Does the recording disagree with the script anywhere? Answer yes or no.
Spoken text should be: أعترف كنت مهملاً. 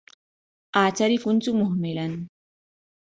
no